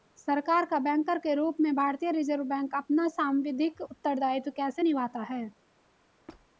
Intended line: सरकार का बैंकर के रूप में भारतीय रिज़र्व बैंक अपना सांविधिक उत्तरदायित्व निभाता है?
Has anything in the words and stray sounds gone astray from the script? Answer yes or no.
yes